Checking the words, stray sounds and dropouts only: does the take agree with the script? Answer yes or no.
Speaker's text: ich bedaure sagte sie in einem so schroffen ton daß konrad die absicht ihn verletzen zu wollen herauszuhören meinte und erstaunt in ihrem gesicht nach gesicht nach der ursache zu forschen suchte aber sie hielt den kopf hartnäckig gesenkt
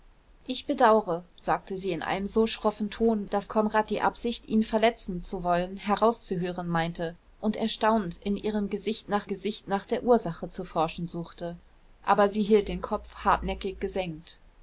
yes